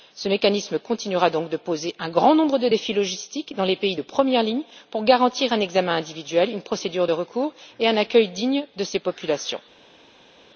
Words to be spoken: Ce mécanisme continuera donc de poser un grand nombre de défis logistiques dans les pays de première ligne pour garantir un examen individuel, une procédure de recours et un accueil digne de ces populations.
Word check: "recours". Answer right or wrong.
right